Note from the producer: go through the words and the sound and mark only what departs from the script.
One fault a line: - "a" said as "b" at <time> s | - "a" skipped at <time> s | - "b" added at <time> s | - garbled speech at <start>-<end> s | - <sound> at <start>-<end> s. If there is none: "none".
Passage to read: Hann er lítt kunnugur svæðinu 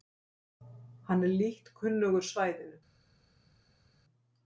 none